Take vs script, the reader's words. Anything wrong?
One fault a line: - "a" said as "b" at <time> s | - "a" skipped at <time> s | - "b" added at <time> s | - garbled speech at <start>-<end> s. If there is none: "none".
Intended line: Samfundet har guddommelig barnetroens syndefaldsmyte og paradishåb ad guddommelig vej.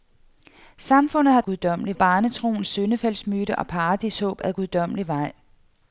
none